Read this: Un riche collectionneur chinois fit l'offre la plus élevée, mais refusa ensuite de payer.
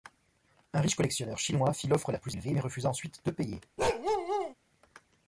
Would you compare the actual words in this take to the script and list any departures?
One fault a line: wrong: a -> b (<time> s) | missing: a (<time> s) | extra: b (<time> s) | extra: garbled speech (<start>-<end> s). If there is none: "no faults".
no faults